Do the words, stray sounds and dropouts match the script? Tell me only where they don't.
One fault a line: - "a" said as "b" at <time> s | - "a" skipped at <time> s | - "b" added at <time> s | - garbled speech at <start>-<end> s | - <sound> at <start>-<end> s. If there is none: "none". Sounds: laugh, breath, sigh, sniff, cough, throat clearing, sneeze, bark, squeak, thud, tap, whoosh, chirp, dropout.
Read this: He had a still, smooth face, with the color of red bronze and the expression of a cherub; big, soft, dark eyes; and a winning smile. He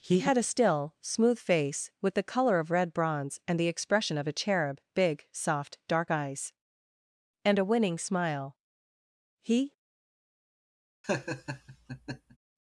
- laugh at 11.0-12.4 s